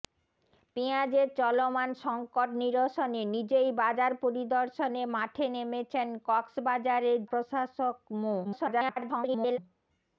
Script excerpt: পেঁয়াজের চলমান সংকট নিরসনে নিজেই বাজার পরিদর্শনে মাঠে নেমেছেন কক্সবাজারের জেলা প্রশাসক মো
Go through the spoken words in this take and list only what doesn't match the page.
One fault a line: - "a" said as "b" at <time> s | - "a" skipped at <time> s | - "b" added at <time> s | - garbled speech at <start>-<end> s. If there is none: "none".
- "জেলা" skipped at 7.2 s
- garbled speech at 8.4-9.6 s